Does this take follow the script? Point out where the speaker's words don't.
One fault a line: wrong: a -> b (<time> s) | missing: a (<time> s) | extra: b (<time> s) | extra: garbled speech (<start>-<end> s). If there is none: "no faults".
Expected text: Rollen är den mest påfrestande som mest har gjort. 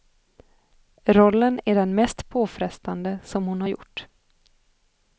wrong: mest -> hon (3.5 s)